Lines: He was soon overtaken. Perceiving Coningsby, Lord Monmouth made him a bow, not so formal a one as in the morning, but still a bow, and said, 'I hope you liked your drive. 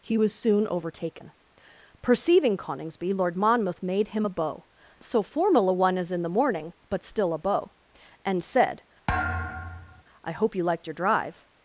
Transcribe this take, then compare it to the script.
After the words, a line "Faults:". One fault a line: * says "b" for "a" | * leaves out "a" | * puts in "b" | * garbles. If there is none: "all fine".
He was soon overtaken. Perceiving Coningsby, Lord Monmouth made him a bow, so formal a one as in the morning, but still a bow, and said, 'I hope you liked your drive.
Faults:
* leaves out "not"